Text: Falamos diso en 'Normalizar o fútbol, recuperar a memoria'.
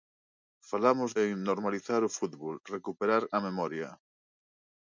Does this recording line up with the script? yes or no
no